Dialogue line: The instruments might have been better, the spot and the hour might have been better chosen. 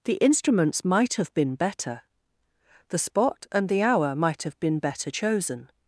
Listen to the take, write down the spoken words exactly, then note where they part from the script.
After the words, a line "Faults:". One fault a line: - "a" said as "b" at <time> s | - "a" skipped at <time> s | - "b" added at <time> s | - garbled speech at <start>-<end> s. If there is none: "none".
The instruments might have been better, the spot and the hour might have been better chosen.
Faults:
none